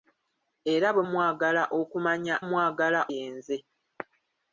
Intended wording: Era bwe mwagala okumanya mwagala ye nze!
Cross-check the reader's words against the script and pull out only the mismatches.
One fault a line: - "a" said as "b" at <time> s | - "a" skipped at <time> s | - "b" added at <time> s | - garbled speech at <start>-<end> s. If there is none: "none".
none